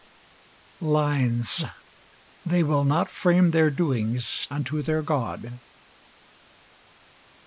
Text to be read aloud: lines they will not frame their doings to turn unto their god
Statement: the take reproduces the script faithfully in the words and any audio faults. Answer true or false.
false